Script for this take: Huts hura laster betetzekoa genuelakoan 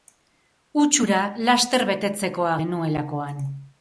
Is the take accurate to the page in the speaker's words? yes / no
yes